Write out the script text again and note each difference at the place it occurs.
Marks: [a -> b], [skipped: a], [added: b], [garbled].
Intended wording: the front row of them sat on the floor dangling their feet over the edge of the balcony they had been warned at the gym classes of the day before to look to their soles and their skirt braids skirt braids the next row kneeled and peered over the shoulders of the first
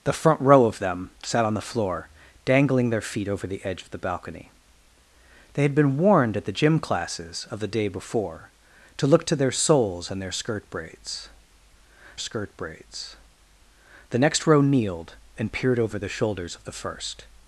the front row of them sat on the floor dangling their feet over the edge of the balcony they had been warned at the gym classes of the day before to look to their soles and their skirt braids skirt braids the next row kneeled and peered over the shoulders of the first